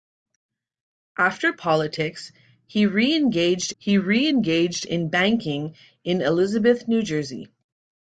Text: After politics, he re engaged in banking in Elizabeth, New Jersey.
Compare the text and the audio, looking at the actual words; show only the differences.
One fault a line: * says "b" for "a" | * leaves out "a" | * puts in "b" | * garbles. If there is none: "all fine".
* puts in "he re engaged"